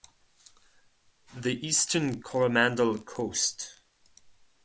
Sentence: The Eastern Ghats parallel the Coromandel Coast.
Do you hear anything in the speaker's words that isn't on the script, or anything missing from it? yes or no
yes